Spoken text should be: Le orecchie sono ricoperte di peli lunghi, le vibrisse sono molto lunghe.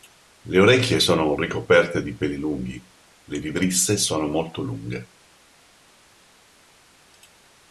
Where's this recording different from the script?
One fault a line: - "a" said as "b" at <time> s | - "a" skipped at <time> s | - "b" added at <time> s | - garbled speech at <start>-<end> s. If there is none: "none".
none